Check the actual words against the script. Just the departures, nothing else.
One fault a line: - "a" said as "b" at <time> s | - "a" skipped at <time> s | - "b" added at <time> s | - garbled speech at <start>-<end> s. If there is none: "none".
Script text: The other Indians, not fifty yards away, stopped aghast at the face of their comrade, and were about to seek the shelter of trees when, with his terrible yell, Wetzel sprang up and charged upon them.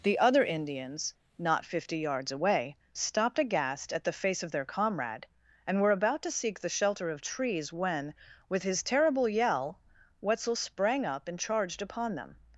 none